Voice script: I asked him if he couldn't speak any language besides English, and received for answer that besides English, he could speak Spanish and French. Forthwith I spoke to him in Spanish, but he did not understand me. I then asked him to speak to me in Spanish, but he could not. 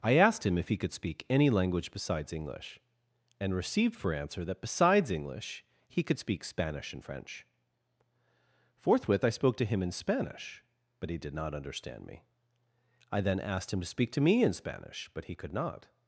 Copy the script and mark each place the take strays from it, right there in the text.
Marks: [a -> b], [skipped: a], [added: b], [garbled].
I asked him if he [couldn't -> could] speak any language besides English, and received for answer that besides English, he could speak Spanish and French. Forthwith I spoke to him in Spanish, but he did not understand me. I then asked him to speak to me in Spanish, but he could not.